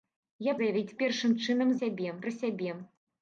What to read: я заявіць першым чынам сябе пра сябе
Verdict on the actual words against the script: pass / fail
pass